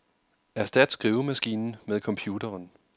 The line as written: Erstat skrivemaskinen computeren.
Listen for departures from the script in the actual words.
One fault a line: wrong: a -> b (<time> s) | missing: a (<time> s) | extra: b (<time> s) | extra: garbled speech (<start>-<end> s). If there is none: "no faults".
extra: med (1.9 s)